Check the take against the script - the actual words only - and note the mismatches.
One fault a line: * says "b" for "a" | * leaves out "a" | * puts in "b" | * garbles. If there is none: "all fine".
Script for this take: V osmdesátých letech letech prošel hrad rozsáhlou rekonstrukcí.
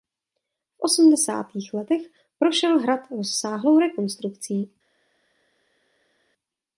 * leaves out "letech"